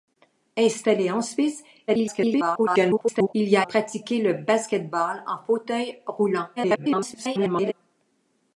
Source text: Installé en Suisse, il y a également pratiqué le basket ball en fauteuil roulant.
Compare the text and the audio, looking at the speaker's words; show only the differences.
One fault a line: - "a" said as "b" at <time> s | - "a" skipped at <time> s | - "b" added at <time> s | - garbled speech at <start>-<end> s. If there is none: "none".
- garbled speech at 1.9-3.3 s
- "également" skipped at 3.7 s
- garbled speech at 6.6-7.7 s